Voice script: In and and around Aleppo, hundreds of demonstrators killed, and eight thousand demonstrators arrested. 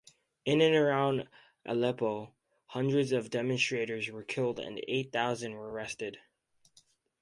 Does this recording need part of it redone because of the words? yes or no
yes